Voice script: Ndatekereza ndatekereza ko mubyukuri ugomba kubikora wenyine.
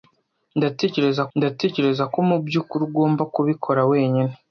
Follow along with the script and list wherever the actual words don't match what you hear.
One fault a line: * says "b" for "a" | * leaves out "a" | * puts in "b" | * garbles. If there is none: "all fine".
all fine